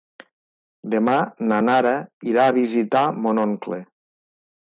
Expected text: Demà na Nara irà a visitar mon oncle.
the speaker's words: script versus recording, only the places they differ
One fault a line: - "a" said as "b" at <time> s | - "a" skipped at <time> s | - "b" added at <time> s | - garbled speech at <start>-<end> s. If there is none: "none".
none